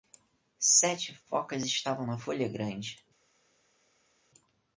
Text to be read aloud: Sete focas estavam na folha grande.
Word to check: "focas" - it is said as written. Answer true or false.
true